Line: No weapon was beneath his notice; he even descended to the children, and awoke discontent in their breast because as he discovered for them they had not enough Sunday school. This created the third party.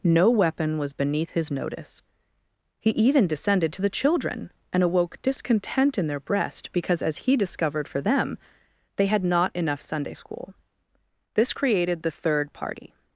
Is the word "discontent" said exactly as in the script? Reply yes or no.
yes